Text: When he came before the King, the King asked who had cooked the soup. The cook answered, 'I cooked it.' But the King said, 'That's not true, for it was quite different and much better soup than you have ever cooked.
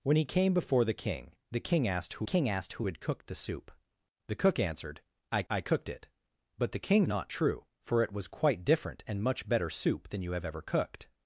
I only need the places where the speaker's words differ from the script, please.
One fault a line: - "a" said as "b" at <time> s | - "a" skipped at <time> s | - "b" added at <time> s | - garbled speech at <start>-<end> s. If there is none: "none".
- "King asked who" added at 2.2 s
- "I" added at 5.5 s
- "said That's" skipped at 7.1 s